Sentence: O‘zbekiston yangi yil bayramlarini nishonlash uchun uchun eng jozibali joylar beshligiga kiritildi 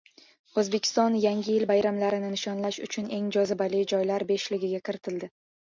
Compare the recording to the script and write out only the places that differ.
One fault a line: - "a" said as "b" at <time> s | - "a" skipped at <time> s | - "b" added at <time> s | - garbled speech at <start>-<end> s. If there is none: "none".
- "uchun" skipped at 3.1 s